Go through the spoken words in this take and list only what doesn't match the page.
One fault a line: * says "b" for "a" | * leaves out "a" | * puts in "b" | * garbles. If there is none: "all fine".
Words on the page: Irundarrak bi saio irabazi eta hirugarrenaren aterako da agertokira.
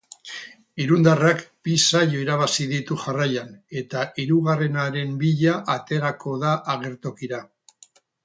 * puts in "ditu jarraian"
* puts in "bila"